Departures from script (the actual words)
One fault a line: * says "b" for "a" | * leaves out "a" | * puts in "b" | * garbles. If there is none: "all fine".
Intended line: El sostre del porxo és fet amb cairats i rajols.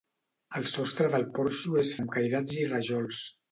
* leaves out "fet"